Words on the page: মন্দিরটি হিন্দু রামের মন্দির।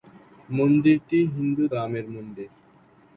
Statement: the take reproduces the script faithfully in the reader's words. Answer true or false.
true